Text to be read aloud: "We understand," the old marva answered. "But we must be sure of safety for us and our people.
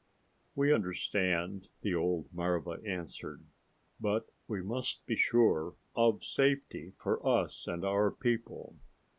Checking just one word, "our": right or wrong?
right